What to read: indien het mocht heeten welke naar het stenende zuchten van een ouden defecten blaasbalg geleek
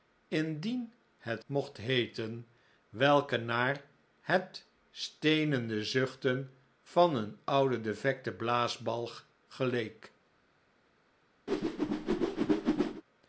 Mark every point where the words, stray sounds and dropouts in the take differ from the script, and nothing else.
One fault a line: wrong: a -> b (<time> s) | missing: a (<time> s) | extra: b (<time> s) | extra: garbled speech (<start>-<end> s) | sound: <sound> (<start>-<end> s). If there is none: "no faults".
sound: whoosh (11.5-13.0 s)